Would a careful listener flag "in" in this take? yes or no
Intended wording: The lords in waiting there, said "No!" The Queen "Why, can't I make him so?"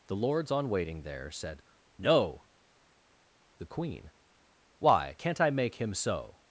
yes